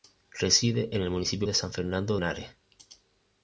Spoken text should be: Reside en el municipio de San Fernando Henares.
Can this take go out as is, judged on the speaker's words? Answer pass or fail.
pass